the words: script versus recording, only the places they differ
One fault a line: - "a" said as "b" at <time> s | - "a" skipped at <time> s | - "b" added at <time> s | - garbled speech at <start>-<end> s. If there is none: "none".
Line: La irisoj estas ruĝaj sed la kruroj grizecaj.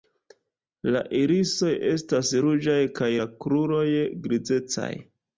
- "sed" said as "kaj" at 3.0 s